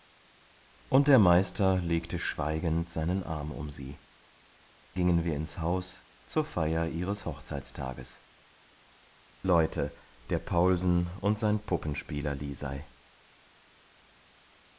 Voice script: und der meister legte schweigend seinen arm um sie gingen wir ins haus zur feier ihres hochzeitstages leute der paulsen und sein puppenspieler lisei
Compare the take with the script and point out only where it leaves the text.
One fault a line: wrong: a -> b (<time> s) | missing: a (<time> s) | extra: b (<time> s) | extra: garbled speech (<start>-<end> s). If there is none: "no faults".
no faults